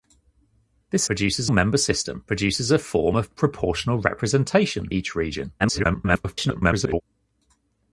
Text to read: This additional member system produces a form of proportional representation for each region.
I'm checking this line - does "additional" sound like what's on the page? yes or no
no